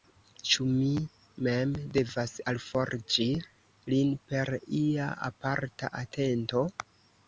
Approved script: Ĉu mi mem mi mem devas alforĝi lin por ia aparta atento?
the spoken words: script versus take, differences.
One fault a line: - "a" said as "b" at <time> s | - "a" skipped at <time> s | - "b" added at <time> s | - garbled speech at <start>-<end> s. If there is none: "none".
- "mi mem" skipped at 1.8 s
- "por" said as "per" at 4.3 s